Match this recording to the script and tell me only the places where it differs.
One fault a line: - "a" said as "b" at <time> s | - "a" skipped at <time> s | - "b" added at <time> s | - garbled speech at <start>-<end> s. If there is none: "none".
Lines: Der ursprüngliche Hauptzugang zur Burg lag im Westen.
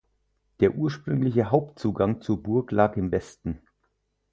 none